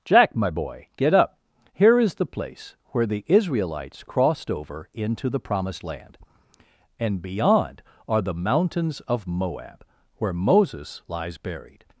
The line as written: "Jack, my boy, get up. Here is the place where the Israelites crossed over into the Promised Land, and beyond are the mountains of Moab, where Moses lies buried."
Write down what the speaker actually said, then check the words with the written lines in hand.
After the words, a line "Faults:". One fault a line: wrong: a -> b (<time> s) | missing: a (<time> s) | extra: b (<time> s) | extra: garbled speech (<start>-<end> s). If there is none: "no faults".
"Jack, my boy, get up. Here is the place where the Israelites crossed over into the Promised Land, and beyond are the mountains of Moab, where Moses lies buried."
Faults:
no faults